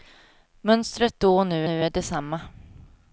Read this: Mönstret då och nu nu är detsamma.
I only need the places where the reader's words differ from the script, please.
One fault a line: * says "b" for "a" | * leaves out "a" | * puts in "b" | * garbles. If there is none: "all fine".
all fine